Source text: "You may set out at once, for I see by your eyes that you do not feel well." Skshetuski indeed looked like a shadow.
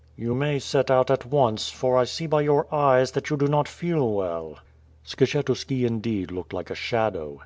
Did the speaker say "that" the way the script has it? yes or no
yes